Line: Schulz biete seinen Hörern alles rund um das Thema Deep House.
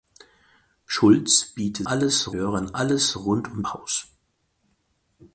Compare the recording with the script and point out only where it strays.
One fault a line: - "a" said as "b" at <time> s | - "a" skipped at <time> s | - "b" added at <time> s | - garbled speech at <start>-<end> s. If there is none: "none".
- "seinen" said as "alles" at 1.8 s
- "das Thema Deep" skipped at 3.6 s